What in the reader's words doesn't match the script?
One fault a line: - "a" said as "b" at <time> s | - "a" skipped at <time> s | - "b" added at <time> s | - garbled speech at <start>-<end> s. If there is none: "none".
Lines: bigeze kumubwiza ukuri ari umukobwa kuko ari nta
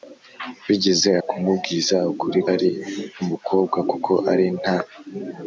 none